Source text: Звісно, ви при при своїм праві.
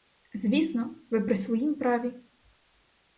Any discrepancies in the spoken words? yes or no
yes